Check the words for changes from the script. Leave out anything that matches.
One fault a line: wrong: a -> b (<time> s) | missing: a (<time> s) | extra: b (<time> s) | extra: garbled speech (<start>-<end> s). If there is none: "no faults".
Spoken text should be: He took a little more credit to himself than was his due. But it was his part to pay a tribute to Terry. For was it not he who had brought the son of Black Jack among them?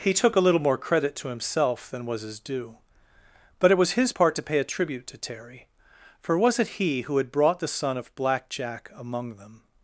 missing: not (6.8 s)